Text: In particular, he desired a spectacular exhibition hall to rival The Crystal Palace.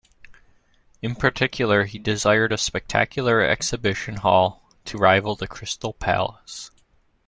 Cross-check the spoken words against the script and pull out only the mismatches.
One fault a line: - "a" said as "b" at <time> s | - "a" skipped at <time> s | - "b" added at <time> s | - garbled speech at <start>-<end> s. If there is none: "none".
none